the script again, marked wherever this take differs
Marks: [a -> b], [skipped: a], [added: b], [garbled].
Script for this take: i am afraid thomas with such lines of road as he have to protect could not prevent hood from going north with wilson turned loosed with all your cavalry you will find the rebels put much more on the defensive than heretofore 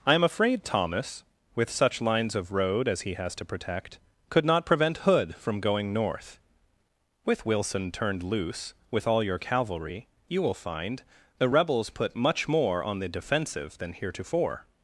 i am afraid thomas with such lines of road as he [have -> has] to protect could not prevent hood from going north with wilson turned [loosed -> loose] with all your cavalry you will find the rebels put much more on the defensive than heretofore